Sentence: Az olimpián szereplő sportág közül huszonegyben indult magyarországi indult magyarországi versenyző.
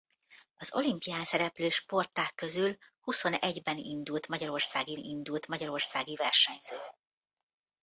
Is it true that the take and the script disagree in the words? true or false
false